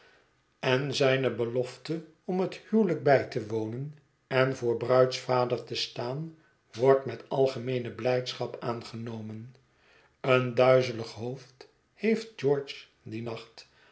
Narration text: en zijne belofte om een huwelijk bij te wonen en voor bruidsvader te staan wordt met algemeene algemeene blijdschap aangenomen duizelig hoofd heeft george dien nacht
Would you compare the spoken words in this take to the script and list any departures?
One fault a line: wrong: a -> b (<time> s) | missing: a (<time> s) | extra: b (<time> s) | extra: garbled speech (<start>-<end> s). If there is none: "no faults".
wrong: een -> het (2.4 s)
missing: algemeene (7.9 s)
extra: een (10.2 s)